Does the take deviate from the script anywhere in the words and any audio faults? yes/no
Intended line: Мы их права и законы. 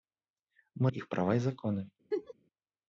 yes